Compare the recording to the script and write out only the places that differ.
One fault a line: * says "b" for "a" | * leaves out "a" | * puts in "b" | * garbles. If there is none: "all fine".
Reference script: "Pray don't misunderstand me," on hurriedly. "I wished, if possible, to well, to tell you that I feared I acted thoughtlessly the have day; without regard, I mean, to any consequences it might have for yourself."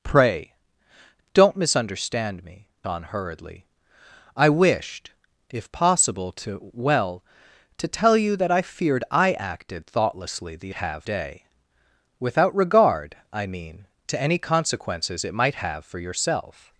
all fine